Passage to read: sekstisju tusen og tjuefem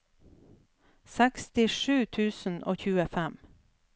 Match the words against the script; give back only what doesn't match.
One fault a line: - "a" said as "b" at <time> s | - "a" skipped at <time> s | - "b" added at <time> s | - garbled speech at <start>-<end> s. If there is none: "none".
none